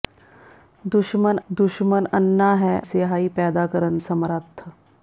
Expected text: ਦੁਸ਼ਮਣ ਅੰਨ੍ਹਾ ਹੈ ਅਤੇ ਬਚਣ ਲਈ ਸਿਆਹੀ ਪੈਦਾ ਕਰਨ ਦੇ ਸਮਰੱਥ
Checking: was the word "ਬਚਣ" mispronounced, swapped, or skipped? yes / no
yes